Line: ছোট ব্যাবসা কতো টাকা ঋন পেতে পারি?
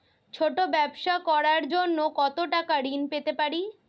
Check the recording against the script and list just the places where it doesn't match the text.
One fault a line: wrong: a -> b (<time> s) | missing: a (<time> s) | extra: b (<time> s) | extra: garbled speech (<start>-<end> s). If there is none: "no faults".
extra: করার জন্য (1.3 s)